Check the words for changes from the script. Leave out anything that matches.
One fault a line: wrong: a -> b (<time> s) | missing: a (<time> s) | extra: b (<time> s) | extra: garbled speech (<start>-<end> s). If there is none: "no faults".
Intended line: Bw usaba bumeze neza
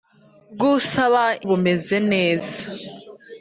no faults